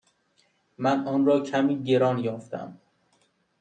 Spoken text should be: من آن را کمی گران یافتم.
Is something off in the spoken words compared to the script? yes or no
no